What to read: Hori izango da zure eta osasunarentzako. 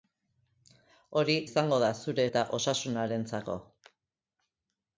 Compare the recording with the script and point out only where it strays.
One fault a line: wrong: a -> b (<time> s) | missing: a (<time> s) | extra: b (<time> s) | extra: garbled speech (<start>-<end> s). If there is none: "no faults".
no faults